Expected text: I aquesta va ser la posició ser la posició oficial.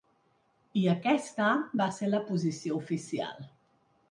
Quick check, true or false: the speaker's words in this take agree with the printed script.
false